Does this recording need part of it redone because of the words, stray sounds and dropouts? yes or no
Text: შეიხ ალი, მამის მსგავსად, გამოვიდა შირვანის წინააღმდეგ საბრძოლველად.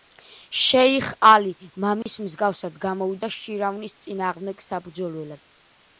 yes